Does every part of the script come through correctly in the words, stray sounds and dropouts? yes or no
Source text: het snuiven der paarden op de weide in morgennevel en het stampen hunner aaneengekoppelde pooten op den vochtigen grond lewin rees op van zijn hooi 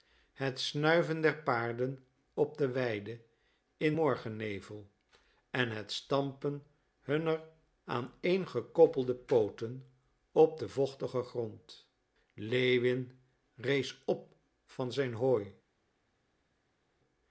yes